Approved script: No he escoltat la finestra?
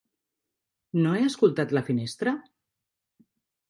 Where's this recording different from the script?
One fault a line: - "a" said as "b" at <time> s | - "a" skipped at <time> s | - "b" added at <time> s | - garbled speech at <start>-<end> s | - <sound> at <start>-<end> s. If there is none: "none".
none